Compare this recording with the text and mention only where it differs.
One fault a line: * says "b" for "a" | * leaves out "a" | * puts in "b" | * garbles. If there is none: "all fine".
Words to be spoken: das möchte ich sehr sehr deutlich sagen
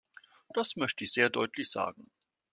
* leaves out "sehr"